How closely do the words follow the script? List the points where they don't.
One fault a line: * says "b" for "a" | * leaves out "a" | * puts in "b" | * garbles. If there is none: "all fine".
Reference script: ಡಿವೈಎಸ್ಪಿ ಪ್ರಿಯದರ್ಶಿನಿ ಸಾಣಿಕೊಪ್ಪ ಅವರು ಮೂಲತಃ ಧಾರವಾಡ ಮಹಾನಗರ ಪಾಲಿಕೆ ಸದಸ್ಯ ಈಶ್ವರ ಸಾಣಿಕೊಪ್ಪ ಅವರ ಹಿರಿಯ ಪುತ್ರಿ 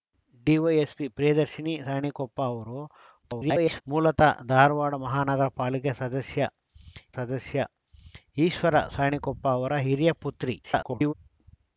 * garbles
* puts in "ಸದಸ್ಯ"
* garbles